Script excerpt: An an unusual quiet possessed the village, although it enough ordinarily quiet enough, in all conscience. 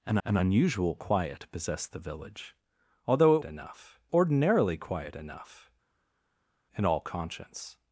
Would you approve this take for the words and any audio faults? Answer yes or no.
yes